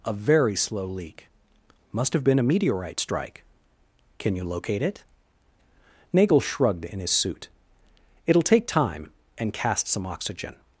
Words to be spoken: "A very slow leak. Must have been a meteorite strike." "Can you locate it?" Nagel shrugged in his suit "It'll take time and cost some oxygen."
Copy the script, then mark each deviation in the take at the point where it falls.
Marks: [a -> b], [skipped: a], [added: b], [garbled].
"A very slow leak. Must have been a meteorite strike." "Can you locate it?" Nagel shrugged in his suit "It'll take time and [cost -> cast] some oxygen."